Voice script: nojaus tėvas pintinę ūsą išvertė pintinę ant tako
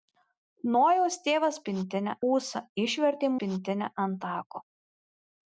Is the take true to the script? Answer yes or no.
yes